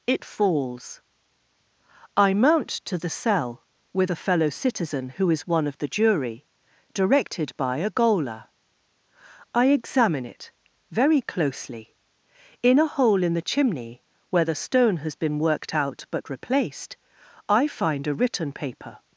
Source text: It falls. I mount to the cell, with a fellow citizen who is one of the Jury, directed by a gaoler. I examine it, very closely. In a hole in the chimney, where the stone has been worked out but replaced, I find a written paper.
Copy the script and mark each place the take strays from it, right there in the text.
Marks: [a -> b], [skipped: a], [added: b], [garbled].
It falls. I mount to the cell, with a fellow citizen who is one of the Jury, directed by a gaoler. I examine it, very closely. In a hole in the chimney, where the stone has been worked out but replaced, I find a written paper.